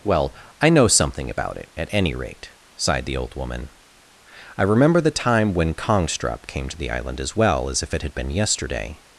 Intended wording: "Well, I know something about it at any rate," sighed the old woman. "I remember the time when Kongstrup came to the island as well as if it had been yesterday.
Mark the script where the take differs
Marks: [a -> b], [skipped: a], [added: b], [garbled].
"Well, I know something about it at any rate," sighed the old woman. "I remember the time when Kongstrup came to the island as well as if it had been yesterday.